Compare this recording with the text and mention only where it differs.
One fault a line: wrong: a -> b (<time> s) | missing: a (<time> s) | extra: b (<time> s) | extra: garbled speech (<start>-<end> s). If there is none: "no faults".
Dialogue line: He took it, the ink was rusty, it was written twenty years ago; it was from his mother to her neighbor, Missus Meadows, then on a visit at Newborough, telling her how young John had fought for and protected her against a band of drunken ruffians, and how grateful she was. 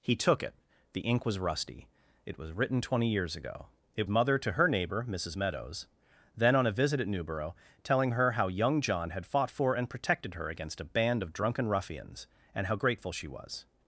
missing: was from his (4.1 s)